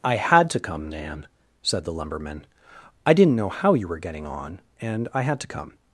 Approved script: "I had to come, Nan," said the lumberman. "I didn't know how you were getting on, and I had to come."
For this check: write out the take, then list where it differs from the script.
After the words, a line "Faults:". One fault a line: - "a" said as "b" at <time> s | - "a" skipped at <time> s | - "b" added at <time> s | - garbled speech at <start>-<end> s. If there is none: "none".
"I had to come, Nan," said the lumberman. "I didn't know how you were getting on, and I had to come."
Faults:
none